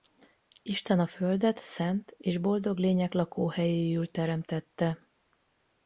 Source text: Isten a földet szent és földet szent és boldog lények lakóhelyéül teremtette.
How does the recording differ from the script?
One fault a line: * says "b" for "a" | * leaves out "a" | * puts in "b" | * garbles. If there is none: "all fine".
* leaves out "földet szent és"